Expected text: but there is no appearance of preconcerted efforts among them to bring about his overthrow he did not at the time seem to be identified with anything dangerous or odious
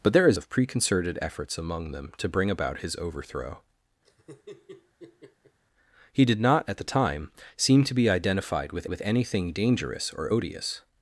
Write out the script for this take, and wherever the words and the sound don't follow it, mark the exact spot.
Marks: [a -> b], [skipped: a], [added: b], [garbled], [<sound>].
but there is [skipped: no appearance] of preconcerted efforts among them to bring about his overthrow [laugh] he did not at the time seem to be identified with [added: with] anything dangerous or odious